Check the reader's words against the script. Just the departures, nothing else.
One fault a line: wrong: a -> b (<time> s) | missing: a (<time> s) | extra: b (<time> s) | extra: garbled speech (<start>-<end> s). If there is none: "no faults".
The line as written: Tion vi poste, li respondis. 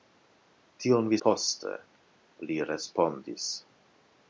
no faults